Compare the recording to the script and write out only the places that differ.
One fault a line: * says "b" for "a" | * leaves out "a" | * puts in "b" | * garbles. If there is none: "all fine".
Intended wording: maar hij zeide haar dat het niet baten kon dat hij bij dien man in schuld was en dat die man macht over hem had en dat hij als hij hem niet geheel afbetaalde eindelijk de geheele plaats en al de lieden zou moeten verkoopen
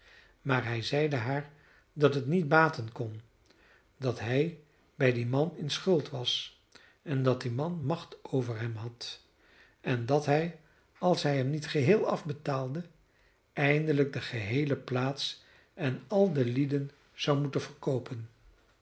all fine